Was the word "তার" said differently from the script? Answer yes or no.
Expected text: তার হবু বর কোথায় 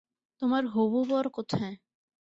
yes